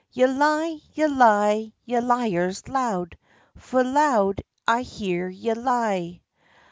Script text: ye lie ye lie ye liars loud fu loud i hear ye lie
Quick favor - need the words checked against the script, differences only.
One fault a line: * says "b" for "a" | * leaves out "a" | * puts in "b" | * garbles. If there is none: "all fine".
all fine